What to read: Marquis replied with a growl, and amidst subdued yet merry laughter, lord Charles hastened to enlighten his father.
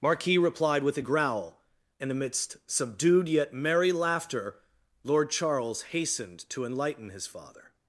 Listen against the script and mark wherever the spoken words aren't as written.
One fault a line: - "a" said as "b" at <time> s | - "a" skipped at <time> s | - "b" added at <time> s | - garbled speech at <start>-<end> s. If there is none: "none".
none